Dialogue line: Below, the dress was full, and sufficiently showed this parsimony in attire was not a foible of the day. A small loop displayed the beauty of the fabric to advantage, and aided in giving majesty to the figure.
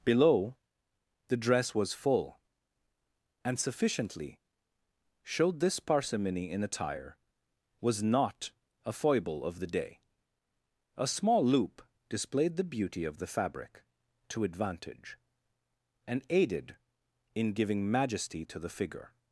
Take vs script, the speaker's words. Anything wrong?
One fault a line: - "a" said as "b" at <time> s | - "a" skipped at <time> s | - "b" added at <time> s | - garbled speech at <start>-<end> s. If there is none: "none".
none